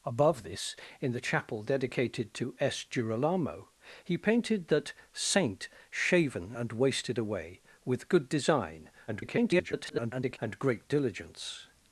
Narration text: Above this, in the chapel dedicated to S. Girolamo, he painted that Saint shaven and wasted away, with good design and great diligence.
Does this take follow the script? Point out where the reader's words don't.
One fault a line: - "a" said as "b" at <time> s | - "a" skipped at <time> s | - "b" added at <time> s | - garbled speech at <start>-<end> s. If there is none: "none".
- garbled speech at 9.1-10.4 s